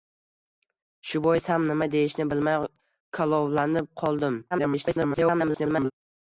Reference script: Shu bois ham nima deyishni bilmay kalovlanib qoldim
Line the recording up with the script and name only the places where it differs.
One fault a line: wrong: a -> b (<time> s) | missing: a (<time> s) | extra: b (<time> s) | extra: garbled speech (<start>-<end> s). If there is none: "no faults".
extra: garbled speech (4.5-5.9 s)